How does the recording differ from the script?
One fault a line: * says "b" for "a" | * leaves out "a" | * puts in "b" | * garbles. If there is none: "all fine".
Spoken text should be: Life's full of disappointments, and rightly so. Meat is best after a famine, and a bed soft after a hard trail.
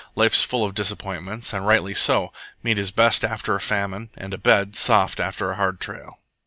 all fine